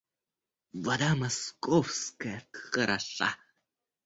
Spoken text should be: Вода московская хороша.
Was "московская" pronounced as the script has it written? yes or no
yes